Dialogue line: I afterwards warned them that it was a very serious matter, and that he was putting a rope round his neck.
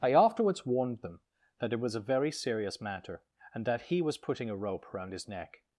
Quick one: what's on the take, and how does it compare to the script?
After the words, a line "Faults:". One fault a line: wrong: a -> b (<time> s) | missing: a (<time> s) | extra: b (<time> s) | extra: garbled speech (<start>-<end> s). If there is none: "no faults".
I afterwards warned them that it was a very serious matter, and that he was putting a rope round his neck.
Faults:
no faults